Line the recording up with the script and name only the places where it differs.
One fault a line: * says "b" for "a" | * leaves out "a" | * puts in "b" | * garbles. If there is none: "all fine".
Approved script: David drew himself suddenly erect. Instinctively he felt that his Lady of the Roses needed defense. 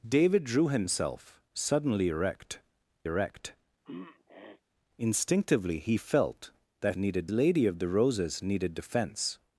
* puts in "erect"
* says "needed" for "his"